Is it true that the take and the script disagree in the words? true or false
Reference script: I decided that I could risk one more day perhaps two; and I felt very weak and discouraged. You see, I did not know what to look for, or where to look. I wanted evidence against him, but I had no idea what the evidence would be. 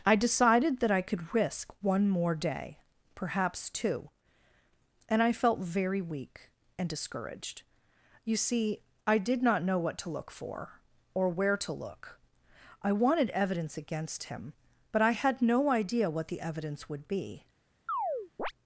false